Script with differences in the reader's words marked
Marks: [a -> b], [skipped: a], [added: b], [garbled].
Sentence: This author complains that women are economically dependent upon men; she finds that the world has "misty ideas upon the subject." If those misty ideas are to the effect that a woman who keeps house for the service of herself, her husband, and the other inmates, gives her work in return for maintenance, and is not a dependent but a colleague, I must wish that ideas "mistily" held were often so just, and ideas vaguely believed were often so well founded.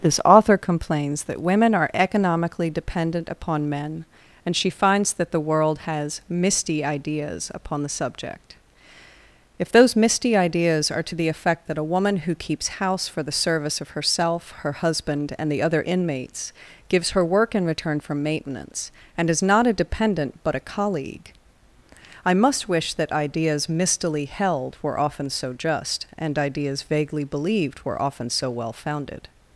This author complains that women are economically dependent upon men; [added: and] she finds that the world has "misty ideas upon the subject." If those misty ideas are to the effect that a woman who keeps house for the service of herself, her husband, and the other inmates, gives her work in return for maintenance, and is not a dependent but a colleague, I must wish that ideas "mistily" held were often so just, and ideas vaguely believed were often so well founded.